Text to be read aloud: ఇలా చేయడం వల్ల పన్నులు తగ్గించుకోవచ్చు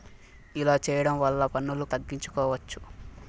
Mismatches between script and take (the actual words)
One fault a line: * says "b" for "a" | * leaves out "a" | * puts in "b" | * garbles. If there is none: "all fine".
all fine